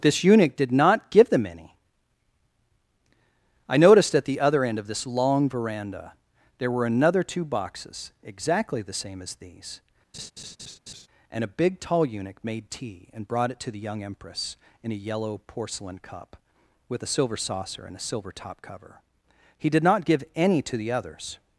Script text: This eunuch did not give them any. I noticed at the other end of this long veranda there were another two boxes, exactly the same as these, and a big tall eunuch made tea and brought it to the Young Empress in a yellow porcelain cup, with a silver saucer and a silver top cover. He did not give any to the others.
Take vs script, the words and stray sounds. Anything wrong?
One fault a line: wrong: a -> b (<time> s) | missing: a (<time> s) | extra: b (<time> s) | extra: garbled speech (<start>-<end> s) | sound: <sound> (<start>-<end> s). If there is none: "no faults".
sound: laugh (10.1-11.1 s)